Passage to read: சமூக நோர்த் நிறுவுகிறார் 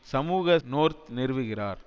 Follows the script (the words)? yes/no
yes